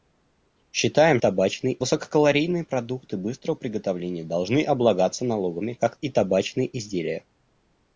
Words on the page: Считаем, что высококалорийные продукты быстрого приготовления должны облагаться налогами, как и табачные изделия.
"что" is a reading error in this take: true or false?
true